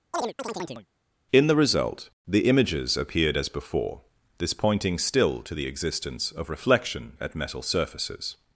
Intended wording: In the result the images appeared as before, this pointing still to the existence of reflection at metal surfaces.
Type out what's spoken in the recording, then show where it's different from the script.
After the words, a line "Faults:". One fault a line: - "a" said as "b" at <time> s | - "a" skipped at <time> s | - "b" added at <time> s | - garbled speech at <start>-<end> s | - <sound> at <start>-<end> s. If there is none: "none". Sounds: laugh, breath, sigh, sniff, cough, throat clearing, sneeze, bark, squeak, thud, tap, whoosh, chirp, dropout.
In the result the images appeared as before, this pointing still to the existence of reflection at metal surfaces.
Faults:
- chirp at 0.1-0.9 s